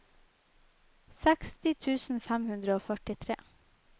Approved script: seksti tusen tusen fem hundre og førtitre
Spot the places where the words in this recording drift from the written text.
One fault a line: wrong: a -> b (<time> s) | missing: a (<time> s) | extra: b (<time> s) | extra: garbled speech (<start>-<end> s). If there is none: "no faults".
missing: tusen (2.2 s)